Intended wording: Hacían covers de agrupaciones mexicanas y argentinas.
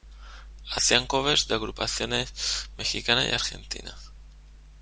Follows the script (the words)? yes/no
yes